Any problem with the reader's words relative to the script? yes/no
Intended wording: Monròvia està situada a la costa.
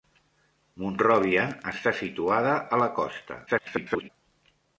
yes